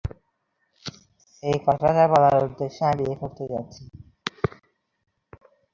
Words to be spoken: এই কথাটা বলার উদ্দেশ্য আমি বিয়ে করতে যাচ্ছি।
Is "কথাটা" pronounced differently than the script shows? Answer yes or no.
no